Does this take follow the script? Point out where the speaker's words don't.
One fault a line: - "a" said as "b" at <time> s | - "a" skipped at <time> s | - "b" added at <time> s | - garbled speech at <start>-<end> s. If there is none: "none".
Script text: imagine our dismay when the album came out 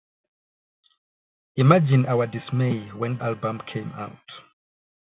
- "the" skipped at 3.2 s